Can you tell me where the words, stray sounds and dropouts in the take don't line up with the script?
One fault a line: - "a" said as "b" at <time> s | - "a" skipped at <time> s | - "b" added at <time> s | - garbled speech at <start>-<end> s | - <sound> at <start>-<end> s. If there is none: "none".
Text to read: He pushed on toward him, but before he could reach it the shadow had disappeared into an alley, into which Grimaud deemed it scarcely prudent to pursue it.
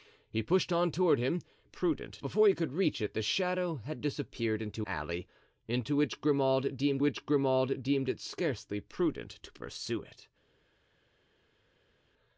- "but" said as "prudent" at 1.6 s
- "an" skipped at 4.9 s
- "which Grimaud deemed" added at 7.0 s